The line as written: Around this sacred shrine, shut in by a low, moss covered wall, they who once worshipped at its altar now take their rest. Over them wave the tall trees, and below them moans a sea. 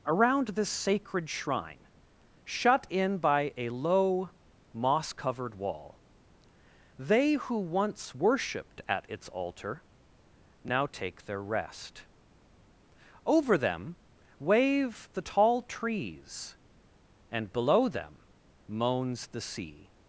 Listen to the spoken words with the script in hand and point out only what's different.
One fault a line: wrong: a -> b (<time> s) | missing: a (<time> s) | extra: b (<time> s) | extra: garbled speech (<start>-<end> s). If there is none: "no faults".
wrong: a -> the (19.3 s)